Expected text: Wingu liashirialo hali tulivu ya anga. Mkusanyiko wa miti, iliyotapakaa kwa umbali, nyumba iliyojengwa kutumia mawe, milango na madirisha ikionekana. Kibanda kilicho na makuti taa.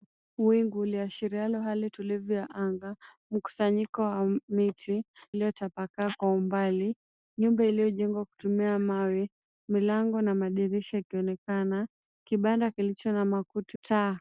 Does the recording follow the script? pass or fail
pass